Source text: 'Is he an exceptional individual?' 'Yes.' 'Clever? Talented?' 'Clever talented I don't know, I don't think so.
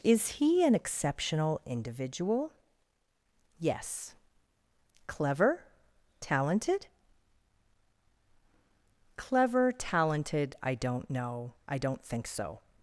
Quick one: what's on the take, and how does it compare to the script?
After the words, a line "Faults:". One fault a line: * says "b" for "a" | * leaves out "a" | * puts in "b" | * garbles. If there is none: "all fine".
'Is he an exceptional individual?' 'Yes.' 'Clever? Talented?' 'Clever talented I don't know, I don't think so.
Faults:
all fine